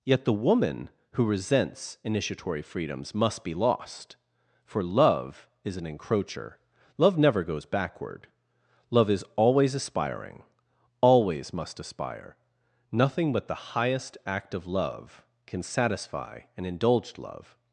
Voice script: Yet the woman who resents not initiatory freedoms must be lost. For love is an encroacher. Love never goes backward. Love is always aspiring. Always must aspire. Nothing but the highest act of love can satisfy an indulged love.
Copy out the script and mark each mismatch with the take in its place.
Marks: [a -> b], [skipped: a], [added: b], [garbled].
Yet the woman who resents [skipped: not] initiatory freedoms must be lost. For love is an encroacher. Love never goes backward. Love is always aspiring. Always must aspire. Nothing but the highest act of love can satisfy an indulged love.